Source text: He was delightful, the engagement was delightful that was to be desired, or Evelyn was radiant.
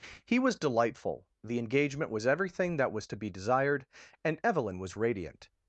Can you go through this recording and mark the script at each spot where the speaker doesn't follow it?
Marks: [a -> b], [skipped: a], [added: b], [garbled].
He was delightful, the engagement was [delightful -> everything] that was to be desired, [or -> and] Evelyn was radiant.